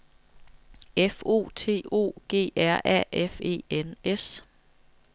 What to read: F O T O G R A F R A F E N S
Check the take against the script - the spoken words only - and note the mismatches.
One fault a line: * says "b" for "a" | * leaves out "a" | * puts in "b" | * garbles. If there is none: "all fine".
* leaves out "R A F"